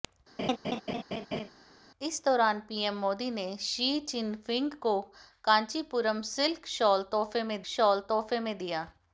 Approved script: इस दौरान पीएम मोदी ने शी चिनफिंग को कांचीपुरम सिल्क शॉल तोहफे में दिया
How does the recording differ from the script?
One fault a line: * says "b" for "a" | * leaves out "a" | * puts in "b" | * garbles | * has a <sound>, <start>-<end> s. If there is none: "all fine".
* has a laugh, 0.4-1.5 s
* puts in "शॉल तोहफे में"